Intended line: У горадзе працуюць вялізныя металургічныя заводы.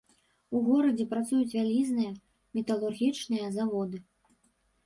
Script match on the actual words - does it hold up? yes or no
yes